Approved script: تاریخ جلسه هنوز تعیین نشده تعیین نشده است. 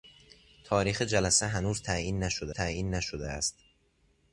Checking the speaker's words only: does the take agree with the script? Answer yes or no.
yes